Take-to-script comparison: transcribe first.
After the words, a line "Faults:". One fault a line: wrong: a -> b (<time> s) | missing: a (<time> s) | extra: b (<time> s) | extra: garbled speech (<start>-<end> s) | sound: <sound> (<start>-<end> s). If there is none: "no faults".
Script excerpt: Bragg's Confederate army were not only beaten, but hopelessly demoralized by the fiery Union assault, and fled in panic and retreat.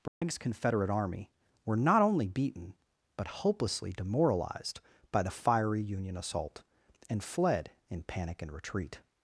Bragg's Confederate army were not only beaten, but hopelessly demoralized by the fiery Union assault, and fled in panic and retreat.
Faults:
sound: dropout (0.1-0.2 s)